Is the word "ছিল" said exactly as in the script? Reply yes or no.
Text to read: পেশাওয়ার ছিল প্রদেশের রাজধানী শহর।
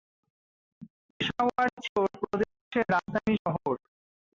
yes